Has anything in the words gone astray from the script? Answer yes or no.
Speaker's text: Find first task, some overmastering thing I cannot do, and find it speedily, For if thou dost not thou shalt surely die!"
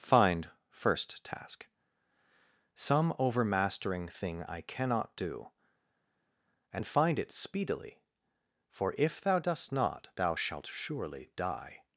no